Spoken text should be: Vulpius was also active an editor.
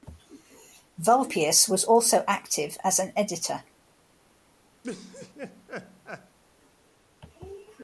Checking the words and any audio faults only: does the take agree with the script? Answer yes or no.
no